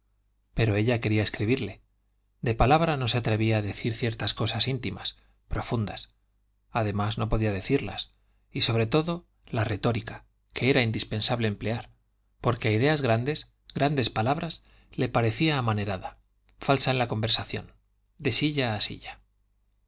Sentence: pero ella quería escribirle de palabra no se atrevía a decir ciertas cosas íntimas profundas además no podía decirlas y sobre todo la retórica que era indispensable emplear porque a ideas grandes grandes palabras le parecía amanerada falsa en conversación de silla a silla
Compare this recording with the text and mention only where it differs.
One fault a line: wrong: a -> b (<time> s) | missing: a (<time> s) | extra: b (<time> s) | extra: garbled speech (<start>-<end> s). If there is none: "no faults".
extra: la (17.0 s)